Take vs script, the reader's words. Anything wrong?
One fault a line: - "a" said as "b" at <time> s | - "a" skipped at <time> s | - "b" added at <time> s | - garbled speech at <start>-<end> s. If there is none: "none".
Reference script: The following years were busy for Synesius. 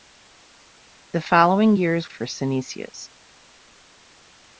- "were busy" skipped at 2.1 s